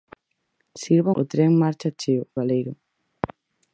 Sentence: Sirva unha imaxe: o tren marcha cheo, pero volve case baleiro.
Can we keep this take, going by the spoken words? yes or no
no